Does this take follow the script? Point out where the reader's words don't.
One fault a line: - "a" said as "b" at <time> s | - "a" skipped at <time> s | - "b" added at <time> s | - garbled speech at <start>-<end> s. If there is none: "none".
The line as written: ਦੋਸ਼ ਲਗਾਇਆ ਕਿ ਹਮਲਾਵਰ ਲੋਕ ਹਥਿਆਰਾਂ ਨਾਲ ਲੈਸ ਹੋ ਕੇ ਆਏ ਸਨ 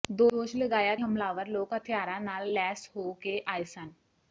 - "ਕਿ" skipped at 0.9 s